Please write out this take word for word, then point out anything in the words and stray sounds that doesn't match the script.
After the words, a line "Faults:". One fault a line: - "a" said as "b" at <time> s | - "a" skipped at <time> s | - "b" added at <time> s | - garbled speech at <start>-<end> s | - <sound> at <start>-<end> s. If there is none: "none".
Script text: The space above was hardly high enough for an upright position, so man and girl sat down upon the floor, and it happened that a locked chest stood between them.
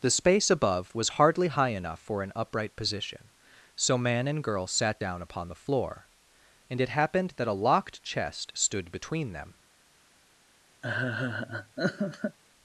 The space above was hardly high enough for an upright position, so man and girl sat down upon the floor, and it happened that a locked chest stood between them.
Faults:
- laugh at 10.8-12.4 s